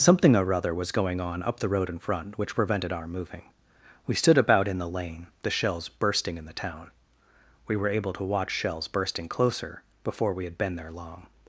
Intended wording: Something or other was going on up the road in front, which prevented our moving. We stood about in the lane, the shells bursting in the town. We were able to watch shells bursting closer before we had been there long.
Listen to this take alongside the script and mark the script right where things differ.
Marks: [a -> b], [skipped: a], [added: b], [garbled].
Something or other was going on up the road in front, which prevented our moving. We stood about in the lane, the shells bursting in the town. We were able to watch shells bursting closer before we had been there long.